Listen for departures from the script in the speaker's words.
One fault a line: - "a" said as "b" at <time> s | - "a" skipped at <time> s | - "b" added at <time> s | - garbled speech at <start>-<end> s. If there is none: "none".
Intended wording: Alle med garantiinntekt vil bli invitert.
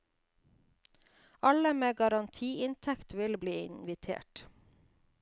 none